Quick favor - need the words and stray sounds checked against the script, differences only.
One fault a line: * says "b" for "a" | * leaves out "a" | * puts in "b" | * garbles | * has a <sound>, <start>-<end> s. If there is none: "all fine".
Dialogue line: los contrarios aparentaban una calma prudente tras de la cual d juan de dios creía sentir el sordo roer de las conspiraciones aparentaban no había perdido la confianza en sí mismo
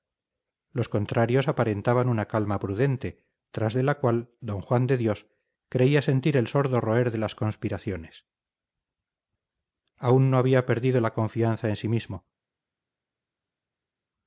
* says "aún" for "aparentaban"